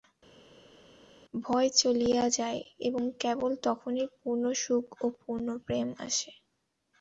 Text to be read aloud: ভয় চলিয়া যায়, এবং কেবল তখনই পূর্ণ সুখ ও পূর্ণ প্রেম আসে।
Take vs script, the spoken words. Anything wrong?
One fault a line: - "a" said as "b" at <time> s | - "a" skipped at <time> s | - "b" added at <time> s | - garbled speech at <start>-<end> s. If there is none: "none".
none